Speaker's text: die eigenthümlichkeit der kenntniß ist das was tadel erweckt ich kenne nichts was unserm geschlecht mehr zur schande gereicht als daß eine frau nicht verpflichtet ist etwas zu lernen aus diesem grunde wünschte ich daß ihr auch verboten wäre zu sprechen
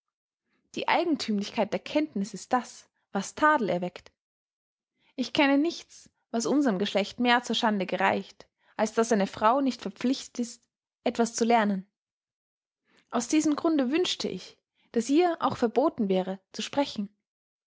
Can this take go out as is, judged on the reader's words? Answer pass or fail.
pass